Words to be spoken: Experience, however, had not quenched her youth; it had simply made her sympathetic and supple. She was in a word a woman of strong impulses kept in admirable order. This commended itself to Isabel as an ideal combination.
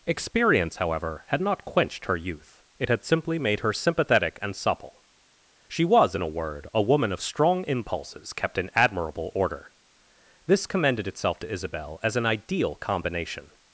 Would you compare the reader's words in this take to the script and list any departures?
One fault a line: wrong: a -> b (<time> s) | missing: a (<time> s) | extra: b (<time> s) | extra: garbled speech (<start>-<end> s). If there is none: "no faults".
no faults